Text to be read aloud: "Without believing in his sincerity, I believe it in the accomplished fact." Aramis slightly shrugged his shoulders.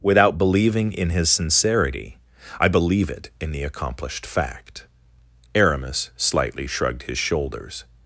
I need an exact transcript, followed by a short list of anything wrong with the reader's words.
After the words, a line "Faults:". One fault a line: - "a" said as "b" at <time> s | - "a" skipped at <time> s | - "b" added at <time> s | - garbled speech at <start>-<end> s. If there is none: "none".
"Without believing in his sincerity, I believe it in the accomplished fact." Aramis slightly shrugged his shoulders.
Faults:
none